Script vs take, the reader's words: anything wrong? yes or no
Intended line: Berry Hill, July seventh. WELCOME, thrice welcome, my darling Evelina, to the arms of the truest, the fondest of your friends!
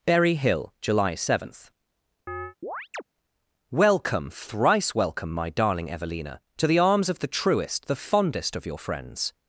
no